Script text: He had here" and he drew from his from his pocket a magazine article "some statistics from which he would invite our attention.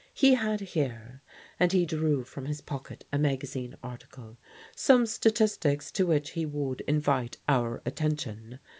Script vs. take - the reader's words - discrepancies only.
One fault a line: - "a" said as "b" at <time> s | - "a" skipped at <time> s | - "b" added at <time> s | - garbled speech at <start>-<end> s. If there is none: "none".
- "from his" skipped at 2.6 s
- "from" said as "to" at 5.9 s